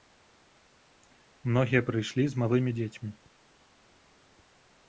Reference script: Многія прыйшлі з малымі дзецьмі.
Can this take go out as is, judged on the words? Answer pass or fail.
pass